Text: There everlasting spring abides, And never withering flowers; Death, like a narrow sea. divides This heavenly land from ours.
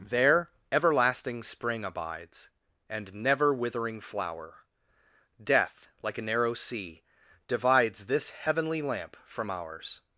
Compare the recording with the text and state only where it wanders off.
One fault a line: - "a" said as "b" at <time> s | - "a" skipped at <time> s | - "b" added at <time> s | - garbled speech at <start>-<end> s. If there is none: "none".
- "flowers" said as "flower" at 4.0 s
- "land" said as "lamp" at 8.8 s